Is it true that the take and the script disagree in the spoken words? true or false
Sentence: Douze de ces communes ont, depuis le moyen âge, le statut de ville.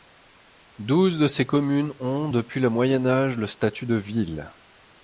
false